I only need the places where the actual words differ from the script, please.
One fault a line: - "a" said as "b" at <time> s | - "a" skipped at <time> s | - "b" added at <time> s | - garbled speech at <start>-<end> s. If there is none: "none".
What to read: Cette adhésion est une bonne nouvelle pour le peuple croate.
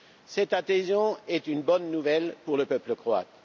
none